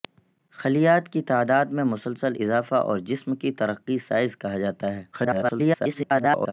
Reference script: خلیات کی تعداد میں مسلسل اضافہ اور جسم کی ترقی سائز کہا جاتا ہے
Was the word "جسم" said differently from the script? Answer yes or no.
no